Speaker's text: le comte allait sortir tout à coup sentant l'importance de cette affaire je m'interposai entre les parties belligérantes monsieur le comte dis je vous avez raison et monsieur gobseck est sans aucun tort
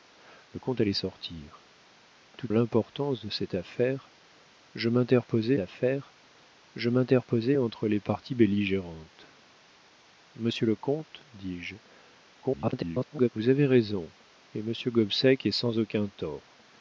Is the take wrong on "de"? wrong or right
wrong